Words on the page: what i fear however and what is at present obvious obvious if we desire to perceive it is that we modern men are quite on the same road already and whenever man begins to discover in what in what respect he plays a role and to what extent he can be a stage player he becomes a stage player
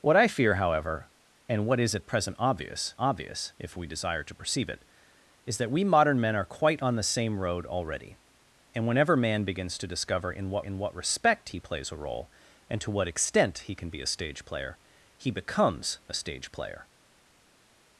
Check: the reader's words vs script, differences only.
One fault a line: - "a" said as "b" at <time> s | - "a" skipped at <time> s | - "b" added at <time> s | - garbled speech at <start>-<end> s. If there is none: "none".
none